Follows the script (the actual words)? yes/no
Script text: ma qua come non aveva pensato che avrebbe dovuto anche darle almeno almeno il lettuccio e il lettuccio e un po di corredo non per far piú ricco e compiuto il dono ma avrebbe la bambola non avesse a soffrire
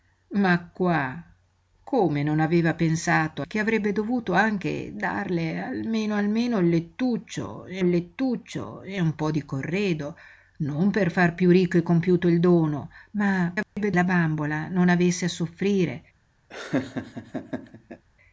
yes